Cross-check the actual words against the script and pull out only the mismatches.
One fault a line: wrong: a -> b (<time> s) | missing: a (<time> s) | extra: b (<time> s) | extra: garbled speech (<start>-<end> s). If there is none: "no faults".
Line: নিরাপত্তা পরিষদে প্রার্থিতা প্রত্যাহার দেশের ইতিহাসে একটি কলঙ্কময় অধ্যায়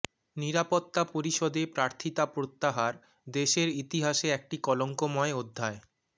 no faults